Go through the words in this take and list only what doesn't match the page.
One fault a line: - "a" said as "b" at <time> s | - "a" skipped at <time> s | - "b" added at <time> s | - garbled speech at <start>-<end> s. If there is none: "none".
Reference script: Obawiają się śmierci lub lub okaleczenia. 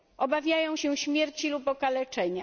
- "lub" skipped at 1.7 s